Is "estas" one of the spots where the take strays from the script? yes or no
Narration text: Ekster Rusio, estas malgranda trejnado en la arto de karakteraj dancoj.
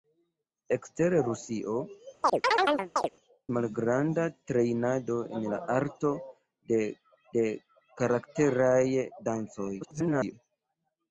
yes